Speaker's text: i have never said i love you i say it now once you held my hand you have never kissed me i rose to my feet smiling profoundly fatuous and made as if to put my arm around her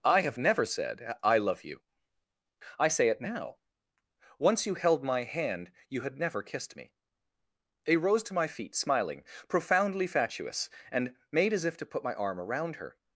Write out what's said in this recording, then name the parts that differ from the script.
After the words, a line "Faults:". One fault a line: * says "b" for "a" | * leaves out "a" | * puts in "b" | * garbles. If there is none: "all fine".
i have never said i love you i say it now once you held my hand you had never kissed me i rose to my feet smiling profoundly fatuous and made as if to put my arm around her
Faults:
* says "had" for "have"